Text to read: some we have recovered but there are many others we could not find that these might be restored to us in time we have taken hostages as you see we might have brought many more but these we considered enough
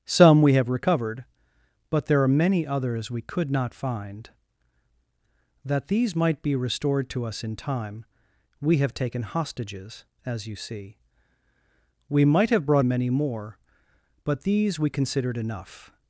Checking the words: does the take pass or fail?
pass